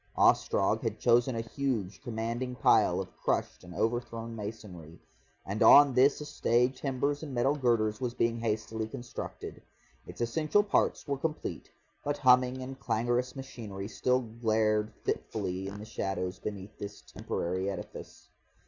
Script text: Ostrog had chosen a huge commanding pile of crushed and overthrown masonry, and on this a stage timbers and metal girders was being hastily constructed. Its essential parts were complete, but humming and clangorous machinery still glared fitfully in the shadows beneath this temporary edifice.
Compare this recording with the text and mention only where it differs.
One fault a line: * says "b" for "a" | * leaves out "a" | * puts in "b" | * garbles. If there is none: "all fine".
all fine